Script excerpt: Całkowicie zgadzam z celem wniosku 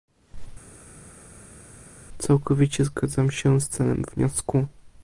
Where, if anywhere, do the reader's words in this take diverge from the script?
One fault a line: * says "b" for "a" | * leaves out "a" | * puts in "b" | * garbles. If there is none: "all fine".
* puts in "się"